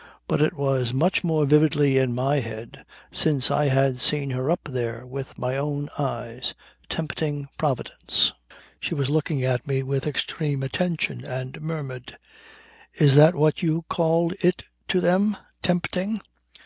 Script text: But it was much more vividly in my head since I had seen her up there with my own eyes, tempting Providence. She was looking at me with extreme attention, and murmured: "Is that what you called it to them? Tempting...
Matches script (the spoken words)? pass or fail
pass